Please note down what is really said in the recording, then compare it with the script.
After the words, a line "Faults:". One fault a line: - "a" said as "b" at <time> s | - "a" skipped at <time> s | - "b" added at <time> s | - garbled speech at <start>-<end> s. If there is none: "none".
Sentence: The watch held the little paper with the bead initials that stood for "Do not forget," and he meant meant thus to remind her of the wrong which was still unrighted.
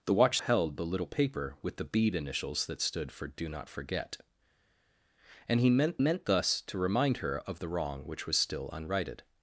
The watch held the little paper with the bead initials that stood for "Do not forget," and he meant meant thus to remind her of the wrong which was still unrighted.
Faults:
none